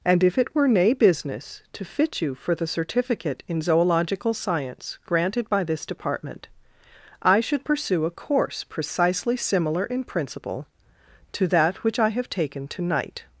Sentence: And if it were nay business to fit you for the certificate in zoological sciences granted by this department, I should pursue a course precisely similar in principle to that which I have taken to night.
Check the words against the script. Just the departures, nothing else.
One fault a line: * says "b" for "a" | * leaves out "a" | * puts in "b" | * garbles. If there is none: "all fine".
* says "science" for "sciences"